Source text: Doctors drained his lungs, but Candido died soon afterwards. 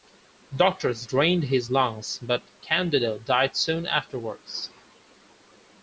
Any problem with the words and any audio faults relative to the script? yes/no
no